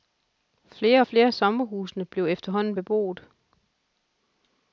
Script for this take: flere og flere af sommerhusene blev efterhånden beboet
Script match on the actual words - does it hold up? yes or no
yes